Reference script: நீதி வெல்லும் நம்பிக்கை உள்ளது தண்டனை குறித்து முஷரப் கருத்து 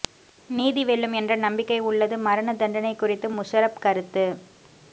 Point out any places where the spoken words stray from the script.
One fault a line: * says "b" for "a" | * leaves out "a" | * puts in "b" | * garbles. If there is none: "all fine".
* puts in "என்ற"
* puts in "மரண"